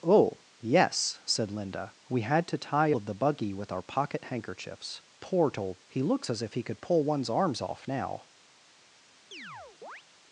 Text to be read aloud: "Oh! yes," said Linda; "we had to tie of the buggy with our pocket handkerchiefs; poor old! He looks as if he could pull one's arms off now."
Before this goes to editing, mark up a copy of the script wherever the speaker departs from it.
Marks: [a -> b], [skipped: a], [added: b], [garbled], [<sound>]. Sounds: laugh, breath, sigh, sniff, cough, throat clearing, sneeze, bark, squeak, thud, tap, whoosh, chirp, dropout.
"Oh! yes," said Linda; "we had to tie of the buggy with our pocket handkerchiefs; poor old! He looks as if he could pull one's arms off now." [chirp]